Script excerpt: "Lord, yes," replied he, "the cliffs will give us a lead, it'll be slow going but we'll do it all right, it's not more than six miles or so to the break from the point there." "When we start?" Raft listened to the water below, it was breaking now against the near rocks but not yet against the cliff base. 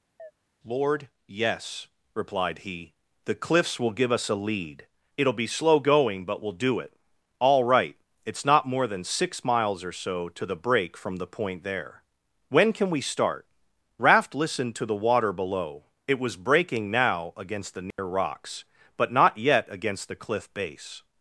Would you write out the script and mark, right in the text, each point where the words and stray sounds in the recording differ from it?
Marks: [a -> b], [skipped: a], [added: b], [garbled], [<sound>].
[chirp] "Lord, yes," replied he, "the cliffs will give us a lead, it'll be slow going but we'll do it all right, it's not more than six miles or so to the break from the point there." "When [added: can] we start?" Raft listened to the water below, it was breaking now against the near [dropout] rocks but not yet against the cliff base.